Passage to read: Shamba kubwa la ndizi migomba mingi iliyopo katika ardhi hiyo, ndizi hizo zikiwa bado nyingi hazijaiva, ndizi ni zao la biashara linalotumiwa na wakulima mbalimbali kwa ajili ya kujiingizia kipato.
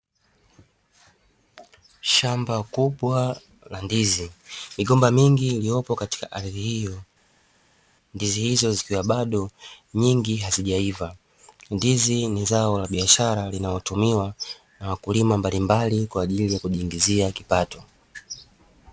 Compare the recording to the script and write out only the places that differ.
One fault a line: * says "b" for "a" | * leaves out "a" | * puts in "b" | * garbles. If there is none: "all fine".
all fine